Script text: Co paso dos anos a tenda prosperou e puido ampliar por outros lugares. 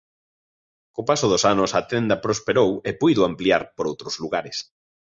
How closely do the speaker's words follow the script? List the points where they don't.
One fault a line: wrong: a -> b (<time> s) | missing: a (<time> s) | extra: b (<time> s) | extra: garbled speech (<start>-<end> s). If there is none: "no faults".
no faults